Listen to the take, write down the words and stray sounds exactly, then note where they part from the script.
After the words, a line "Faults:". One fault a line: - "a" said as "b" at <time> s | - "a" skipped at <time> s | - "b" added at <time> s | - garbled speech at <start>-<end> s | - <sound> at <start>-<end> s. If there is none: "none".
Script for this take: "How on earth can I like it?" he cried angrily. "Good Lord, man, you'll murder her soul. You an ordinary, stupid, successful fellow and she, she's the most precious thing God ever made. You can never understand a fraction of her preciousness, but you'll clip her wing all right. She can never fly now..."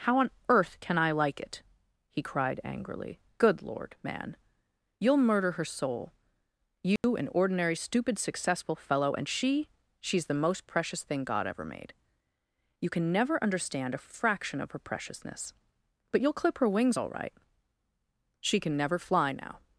"How on earth can I like it?" he cried angrily. "Good Lord, man, you'll murder her soul. You an ordinary, stupid, successful fellow and she, she's the most precious thing God ever made. You can never understand a fraction of her preciousness, but you'll clip her wings all right. She can never fly now..."
Faults:
- dropout at 7.0-7.0 s
- "wing" said as "wings" at 16.7 s